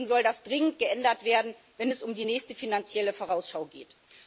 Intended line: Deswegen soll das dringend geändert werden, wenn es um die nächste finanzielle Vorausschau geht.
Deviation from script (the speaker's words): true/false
false